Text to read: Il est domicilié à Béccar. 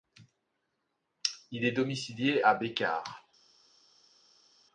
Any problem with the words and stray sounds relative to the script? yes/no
no